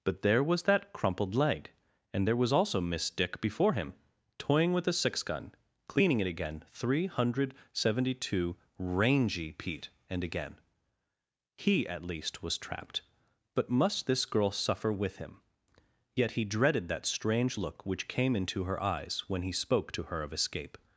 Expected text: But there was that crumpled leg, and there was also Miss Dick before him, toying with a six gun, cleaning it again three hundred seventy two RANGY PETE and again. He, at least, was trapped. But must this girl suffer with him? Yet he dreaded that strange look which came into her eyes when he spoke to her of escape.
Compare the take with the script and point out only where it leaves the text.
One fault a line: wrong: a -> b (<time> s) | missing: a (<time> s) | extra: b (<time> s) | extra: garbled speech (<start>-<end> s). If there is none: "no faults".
no faults